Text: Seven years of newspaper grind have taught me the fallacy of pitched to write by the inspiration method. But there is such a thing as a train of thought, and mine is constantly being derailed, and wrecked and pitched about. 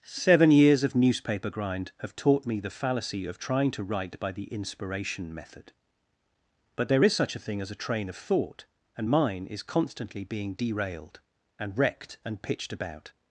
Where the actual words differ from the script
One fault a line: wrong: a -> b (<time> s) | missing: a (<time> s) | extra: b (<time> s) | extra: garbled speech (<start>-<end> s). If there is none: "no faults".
wrong: pitched -> trying (3.4 s)